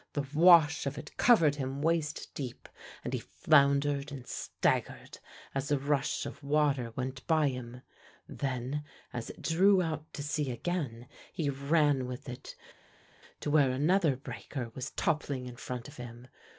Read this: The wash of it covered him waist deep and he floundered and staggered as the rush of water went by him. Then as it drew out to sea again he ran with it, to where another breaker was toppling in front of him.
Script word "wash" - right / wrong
right